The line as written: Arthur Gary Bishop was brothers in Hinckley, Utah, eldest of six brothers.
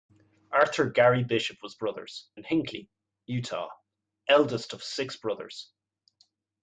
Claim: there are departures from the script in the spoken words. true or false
false